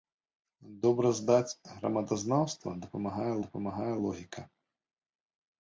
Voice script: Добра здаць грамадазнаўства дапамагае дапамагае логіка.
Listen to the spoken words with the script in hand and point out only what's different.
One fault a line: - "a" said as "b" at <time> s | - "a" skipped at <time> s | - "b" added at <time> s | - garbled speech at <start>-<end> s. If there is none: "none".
none